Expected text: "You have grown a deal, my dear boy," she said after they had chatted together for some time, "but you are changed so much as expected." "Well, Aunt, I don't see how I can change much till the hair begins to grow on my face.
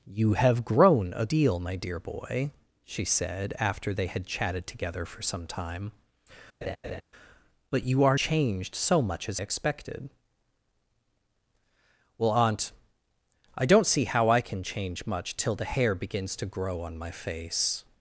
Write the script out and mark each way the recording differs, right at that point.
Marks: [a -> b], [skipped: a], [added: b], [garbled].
"You have grown a deal, my dear boy," she said after they had chatted together for some time, "but you are changed so much as expected." "Well, Aunt, I don't see how I can change much till the hair begins to grow on my face.